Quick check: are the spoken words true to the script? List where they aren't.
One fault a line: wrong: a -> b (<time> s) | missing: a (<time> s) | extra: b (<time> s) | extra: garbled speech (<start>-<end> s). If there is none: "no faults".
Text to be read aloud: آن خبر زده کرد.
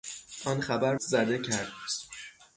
no faults